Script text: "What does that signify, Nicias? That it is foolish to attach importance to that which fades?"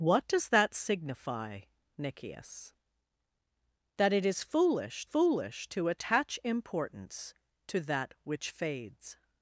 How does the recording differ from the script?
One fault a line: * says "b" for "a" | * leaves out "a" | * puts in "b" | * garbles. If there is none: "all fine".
* puts in "foolish"